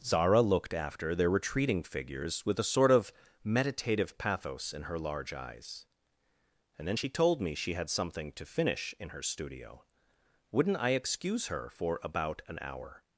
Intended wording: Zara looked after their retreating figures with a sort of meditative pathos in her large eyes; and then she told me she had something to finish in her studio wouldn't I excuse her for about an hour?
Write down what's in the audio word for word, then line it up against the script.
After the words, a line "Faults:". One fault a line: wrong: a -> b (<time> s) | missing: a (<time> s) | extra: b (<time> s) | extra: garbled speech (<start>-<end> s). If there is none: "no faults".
Zara looked after their retreating figures with a sort of meditative pathos in her large eyes; and then she told me she had something to finish in her studio wouldn't I excuse her for about an hour?
Faults:
no faults